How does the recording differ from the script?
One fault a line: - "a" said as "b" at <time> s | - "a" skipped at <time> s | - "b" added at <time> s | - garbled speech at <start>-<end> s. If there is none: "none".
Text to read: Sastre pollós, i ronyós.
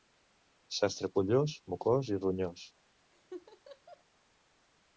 - "mocós" added at 1.8 s